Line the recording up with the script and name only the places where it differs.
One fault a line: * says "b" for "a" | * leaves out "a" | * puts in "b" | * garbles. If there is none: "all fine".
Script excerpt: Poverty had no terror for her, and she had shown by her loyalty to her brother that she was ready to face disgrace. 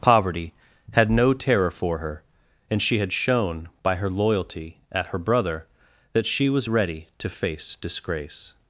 * says "at" for "to"